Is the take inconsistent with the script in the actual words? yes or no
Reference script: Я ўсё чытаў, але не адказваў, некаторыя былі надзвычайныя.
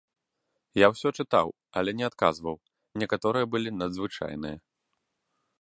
no